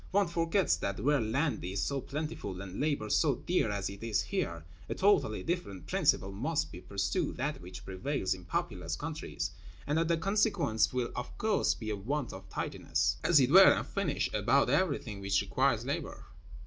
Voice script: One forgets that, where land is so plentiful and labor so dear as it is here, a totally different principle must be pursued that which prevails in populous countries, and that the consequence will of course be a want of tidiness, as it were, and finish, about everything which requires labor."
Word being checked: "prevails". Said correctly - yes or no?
yes